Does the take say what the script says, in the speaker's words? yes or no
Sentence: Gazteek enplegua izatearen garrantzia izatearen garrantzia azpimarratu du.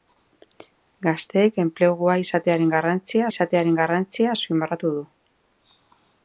yes